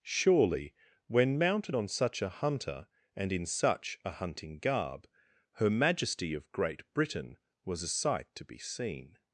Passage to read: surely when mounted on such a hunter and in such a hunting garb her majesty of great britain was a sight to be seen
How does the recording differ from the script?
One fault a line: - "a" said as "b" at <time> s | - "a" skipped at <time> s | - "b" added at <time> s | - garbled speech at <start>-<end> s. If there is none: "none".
none